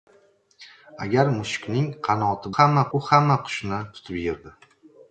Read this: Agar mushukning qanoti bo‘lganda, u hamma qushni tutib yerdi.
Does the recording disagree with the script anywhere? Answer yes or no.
yes